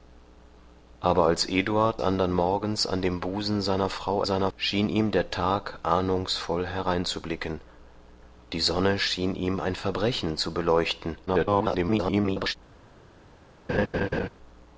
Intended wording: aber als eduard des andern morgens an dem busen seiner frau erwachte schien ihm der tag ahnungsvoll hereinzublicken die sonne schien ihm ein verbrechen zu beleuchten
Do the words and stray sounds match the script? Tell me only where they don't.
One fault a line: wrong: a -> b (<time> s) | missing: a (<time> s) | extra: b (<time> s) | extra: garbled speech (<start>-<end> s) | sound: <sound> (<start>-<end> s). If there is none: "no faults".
missing: des (2.0 s)
wrong: erwachte -> seiner (4.2 s)
extra: garbled speech (11.3-12.6 s)
sound: laugh (13.7-14.3 s)